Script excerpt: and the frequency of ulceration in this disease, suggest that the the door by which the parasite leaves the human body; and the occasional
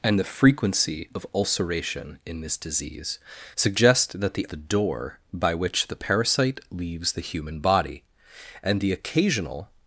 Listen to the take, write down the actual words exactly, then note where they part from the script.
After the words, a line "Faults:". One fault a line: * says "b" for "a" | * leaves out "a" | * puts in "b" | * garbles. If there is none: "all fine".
and the frequency of ulceration in this disease, suggest that the the door by which the parasite leaves the human body; and the occasional
Faults:
all fine